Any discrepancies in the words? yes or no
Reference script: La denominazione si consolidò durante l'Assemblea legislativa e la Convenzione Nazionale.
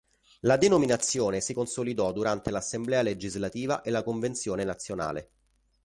no